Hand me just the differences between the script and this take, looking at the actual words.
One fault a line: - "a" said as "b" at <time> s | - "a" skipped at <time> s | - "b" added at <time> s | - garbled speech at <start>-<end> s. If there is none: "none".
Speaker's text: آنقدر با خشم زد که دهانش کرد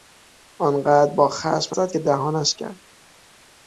none